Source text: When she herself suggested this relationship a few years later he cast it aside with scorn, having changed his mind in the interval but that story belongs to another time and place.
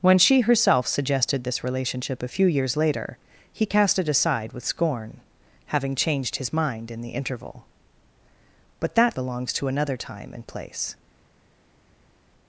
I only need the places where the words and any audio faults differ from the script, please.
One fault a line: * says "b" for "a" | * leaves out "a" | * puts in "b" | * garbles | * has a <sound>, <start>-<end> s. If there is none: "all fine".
* leaves out "story"